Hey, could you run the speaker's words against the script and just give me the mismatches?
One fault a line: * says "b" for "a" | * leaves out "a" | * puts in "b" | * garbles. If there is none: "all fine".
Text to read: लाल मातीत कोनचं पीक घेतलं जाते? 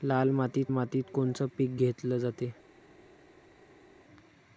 * puts in "मातीत"